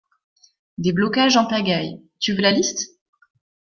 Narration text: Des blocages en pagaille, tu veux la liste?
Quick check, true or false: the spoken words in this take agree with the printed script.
true